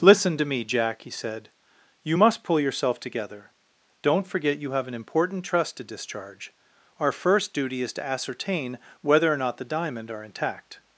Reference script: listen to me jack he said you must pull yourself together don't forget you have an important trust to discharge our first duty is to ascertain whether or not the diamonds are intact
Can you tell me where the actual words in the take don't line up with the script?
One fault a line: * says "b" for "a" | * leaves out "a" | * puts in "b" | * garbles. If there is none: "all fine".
* says "diamond" for "diamonds"